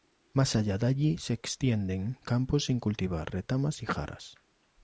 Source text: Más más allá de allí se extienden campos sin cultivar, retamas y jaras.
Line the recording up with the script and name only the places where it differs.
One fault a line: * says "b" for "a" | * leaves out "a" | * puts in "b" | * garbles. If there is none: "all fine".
* leaves out "más"